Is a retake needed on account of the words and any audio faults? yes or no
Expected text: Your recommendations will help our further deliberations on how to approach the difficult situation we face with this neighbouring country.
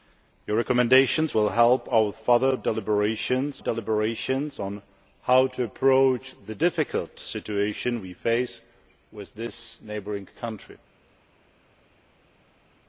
yes